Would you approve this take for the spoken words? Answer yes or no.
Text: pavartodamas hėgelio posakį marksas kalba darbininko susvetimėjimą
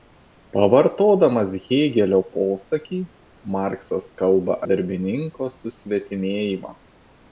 yes